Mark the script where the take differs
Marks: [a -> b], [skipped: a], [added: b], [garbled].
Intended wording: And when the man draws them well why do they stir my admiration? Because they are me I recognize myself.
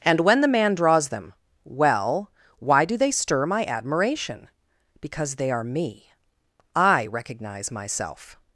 And when the man draws them well why do they stir my admiration? Because they are me I recognize myself.